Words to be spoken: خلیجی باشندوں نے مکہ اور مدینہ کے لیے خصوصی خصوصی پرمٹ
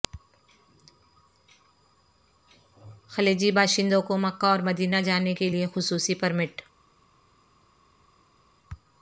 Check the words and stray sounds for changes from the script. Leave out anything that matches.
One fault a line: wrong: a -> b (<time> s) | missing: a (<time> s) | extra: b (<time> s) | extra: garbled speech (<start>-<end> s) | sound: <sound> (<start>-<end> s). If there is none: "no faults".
wrong: نے -> کو (4.0 s)
extra: جانے (5.0 s)
missing: خصوصی (6.1 s)